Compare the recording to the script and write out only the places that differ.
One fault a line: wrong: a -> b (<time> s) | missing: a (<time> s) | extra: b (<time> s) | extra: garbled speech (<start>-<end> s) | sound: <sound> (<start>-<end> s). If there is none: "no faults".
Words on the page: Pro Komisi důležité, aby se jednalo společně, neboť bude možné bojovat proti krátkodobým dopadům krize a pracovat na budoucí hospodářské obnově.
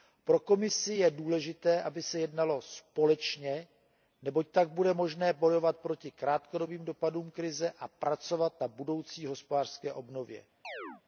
extra: je (0.9 s)
extra: tak (4.5 s)
sound: chirp (10.6-11.0 s)